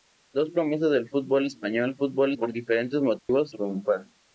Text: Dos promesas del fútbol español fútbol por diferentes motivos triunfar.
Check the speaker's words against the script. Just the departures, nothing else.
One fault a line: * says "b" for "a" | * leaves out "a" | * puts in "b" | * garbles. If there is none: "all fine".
all fine